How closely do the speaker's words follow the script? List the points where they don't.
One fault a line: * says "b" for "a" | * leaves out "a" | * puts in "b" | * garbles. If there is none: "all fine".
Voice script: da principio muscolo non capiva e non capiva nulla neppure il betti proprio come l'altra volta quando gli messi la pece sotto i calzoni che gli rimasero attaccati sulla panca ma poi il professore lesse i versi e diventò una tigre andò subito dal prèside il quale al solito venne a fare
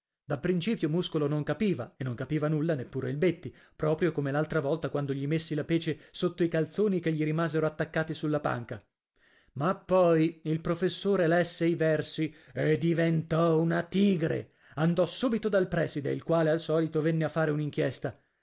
all fine